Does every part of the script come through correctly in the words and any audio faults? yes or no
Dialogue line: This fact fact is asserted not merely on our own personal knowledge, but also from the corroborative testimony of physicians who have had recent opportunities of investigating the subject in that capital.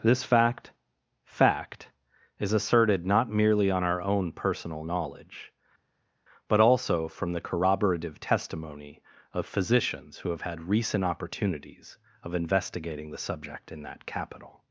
yes